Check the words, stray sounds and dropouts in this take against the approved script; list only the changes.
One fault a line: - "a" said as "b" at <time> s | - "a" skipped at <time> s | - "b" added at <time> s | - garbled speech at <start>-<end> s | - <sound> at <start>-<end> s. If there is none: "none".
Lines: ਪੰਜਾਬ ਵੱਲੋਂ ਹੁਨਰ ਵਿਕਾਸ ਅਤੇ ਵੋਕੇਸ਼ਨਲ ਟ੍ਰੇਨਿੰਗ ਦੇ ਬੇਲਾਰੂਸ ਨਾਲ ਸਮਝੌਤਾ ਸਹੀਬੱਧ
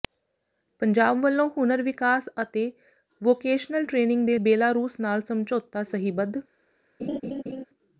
- laugh at 7.0-7.6 s